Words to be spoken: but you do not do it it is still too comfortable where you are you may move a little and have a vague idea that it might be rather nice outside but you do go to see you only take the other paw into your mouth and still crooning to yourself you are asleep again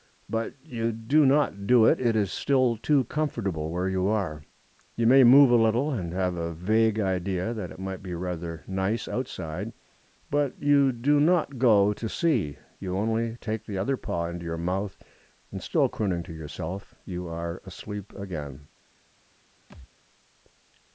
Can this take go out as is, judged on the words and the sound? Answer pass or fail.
fail